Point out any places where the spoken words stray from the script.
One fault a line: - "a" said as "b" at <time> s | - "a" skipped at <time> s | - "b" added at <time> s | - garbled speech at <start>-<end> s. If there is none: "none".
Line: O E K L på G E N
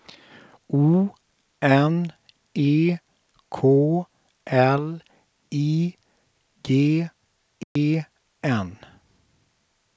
- "N" added at 1.6 s
- "på" said as "I" at 5.5 s